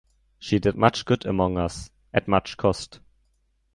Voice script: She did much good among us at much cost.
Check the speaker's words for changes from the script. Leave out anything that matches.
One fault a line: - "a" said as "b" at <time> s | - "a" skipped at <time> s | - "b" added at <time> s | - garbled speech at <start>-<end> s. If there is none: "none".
none